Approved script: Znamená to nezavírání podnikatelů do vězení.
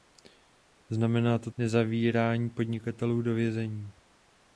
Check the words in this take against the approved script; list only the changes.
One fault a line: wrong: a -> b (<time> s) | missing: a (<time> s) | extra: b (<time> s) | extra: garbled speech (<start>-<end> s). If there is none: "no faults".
no faults